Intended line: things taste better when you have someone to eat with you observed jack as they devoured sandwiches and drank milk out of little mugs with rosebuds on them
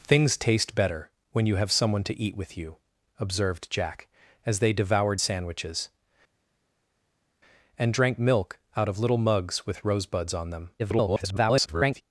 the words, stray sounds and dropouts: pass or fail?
fail